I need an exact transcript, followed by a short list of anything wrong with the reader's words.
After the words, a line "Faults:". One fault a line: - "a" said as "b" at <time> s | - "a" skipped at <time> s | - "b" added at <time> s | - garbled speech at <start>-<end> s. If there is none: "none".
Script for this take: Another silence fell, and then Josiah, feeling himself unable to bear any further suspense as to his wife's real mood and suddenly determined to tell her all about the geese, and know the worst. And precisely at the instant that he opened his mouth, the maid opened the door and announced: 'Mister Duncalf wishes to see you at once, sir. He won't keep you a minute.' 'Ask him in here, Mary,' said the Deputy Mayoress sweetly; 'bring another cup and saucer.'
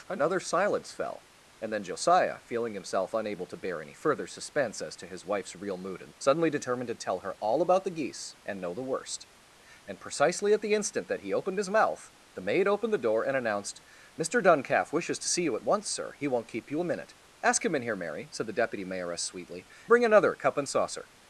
Another silence fell, and then Josiah, feeling himself unable to bear any further suspense as to his wife's real mood and suddenly determined to tell her all about the geese, and know the worst. And precisely at the instant that he opened his mouth, the maid opened the door and announced: 'Mister Duncalf wishes to see you at once, sir. He won't keep you a minute.' 'Ask him in here, Mary,' said the Deputy Mayoress sweetly; 'bring another cup and saucer.'
Faults:
none